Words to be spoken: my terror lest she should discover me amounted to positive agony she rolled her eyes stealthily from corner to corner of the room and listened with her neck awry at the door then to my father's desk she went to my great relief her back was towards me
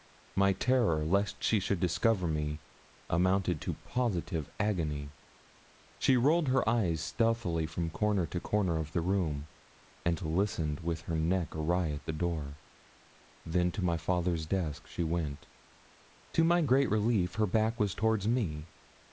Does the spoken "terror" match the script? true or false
true